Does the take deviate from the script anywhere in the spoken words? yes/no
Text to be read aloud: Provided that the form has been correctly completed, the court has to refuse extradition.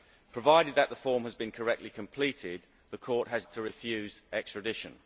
no